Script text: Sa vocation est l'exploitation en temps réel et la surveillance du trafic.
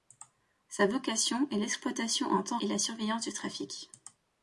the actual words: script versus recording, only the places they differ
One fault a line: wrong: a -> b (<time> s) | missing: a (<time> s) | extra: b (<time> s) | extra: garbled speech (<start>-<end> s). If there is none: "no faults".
missing: réel (2.6 s)